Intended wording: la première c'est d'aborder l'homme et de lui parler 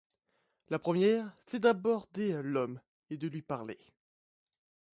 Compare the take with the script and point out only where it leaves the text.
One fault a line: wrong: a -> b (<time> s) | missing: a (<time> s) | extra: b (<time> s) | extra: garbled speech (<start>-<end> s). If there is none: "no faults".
no faults